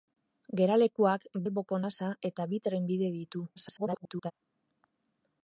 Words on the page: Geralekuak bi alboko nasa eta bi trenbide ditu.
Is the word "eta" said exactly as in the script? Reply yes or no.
yes